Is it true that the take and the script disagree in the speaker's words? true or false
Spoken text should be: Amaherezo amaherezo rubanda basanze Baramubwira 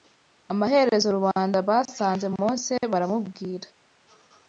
true